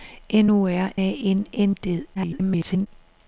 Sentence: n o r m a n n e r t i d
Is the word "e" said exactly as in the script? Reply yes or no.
no